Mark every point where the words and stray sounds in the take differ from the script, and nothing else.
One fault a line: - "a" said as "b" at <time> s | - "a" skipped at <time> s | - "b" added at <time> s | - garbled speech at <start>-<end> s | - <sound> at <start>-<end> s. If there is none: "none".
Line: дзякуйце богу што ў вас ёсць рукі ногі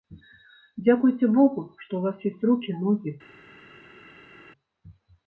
none